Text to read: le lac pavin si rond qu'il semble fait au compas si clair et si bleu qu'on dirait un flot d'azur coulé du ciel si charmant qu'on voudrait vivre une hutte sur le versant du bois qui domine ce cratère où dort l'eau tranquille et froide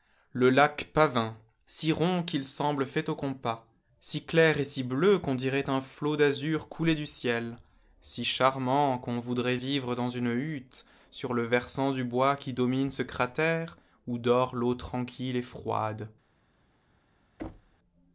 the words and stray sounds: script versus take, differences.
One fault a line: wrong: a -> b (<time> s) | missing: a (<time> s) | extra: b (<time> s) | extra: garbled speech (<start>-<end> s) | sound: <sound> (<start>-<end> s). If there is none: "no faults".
extra: dans (9.9 s)
sound: thud (17.4-17.8 s)